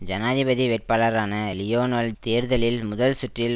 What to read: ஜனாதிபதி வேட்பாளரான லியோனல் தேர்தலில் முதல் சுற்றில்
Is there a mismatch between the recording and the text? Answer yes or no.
no